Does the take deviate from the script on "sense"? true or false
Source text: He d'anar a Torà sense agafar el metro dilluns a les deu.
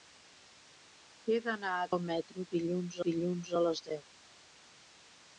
true